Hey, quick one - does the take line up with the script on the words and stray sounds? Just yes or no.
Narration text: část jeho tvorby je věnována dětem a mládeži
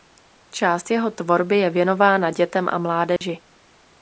no